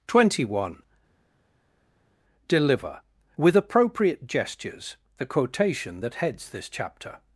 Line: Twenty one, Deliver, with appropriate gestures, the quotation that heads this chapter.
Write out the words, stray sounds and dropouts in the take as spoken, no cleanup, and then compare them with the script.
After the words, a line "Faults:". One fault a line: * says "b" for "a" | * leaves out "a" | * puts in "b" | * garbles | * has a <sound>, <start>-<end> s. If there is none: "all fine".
Twenty one, Deliver, with appropriate gestures, the quotation that heads this chapter.
Faults:
all fine